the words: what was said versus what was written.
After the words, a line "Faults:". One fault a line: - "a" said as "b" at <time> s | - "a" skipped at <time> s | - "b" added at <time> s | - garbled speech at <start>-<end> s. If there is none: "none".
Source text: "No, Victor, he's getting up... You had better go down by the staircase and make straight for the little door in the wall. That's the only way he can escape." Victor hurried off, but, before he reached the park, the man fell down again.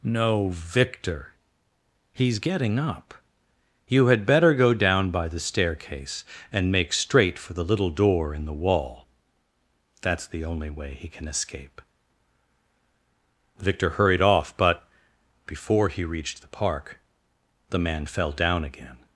"No, Victor, he's getting up... You had better go down by the staircase and make straight for the little door in the wall. That's the only way he can escape." Victor hurried off, but, before he reached the park, the man fell down again.
Faults:
none